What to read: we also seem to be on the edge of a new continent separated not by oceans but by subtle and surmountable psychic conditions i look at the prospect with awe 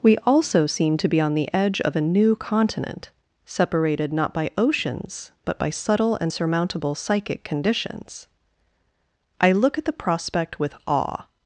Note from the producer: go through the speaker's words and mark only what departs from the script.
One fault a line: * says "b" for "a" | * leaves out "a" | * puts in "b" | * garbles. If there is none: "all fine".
all fine